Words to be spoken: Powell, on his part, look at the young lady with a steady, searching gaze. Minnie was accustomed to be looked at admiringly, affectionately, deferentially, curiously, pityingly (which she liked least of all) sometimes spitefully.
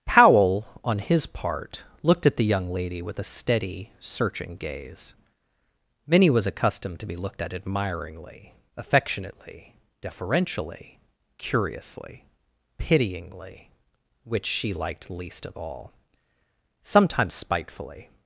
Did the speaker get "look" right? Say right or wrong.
wrong